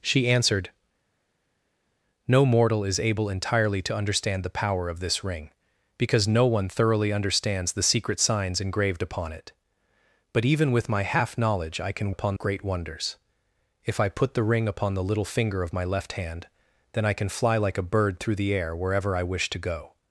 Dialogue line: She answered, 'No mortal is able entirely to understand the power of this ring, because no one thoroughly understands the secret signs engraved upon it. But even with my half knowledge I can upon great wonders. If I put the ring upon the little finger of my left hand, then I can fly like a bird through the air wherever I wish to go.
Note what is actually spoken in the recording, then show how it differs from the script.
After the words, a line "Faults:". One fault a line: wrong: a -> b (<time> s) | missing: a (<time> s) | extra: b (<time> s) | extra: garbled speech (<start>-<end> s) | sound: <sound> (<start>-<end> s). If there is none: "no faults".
She answered, 'No mortal is able entirely to understand the power of this ring, because no one thoroughly understands the secret signs engraved upon it. But even with my half knowledge I can upon great wonders. If I put the ring upon the little finger of my left hand, then I can fly like a bird through the air wherever I wish to go.
Faults:
no faults